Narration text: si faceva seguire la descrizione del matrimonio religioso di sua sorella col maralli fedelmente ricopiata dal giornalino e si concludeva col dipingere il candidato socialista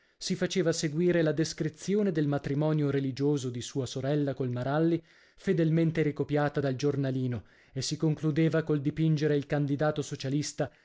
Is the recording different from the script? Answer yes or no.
no